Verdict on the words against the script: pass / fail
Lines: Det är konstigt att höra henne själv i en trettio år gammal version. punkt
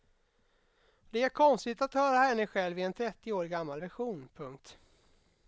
pass